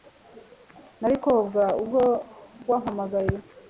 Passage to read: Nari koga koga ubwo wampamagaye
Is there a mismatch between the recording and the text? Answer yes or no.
yes